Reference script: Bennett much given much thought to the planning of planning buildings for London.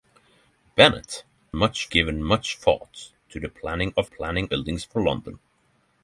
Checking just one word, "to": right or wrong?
right